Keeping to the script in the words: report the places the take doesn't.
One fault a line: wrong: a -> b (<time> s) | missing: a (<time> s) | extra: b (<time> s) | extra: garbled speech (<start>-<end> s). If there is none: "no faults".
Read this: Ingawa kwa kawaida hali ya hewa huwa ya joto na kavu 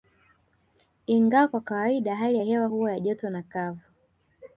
no faults